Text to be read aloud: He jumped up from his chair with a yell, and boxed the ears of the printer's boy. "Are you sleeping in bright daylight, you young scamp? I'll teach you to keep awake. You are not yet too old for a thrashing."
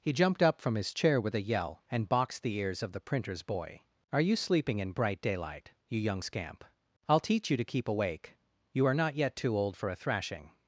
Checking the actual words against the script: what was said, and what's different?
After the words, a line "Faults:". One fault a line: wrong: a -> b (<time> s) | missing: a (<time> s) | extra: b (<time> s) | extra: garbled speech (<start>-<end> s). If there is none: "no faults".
He jumped up from his chair with a yell, and boxed the ears of the printer's boy. "Are you sleeping in bright daylight, you young scamp? I'll teach you to keep awake. You are not yet too old for a thrashing."
Faults:
no faults